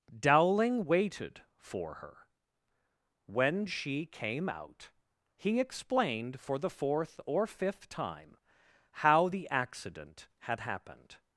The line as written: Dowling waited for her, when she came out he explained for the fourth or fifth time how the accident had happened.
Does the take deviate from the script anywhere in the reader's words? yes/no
no